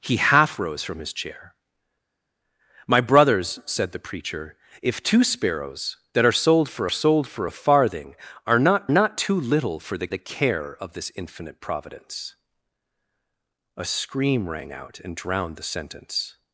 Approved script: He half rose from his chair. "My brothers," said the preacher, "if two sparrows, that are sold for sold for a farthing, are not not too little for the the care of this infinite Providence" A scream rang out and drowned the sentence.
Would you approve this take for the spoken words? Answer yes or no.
yes